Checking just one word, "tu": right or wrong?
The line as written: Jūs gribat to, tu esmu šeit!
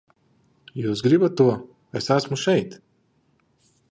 wrong